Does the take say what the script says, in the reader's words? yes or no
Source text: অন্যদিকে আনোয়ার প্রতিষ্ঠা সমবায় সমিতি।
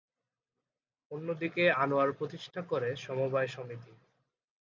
no